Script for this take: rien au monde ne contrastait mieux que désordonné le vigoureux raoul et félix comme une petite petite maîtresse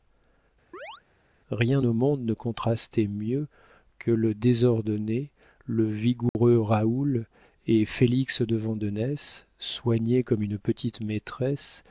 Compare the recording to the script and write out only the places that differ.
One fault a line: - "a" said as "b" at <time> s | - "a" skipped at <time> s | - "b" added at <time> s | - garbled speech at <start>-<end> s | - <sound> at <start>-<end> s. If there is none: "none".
- chirp at 0.7-1.0 s
- "le" added at 4.1 s
- dropout at 6.3-6.4 s
- "de vandenesse soigné" added at 8.4 s
- "petite" skipped at 11.0 s